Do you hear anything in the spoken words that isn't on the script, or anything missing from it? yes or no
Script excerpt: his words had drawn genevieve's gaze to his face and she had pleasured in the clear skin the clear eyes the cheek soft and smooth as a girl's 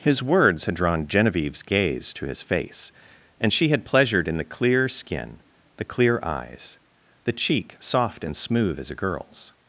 no